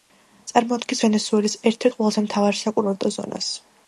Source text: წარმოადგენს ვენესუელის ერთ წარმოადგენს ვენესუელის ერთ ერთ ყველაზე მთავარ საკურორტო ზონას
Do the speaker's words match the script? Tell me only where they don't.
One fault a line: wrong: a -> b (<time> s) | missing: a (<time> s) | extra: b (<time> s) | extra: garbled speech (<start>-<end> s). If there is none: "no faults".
missing: წარმოადგენს ვენესუელის ერთ (1.9 s)